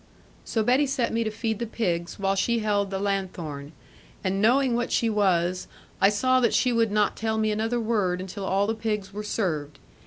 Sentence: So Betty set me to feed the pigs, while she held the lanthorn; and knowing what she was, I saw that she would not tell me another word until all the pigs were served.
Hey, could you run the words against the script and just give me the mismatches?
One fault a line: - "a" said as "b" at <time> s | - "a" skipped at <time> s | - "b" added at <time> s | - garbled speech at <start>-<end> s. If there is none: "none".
none